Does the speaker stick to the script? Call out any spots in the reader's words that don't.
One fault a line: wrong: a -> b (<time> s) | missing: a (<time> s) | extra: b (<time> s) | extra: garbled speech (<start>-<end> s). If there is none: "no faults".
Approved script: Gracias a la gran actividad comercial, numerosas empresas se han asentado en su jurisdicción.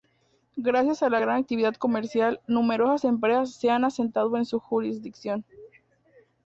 no faults